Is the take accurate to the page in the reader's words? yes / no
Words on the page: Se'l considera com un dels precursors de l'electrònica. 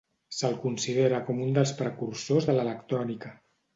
yes